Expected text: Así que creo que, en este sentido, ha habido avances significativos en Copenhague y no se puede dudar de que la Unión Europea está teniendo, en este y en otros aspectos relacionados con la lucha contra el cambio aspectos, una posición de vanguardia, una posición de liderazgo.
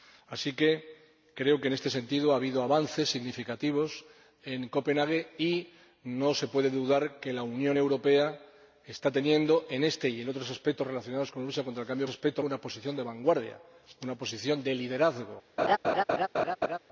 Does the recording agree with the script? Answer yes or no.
yes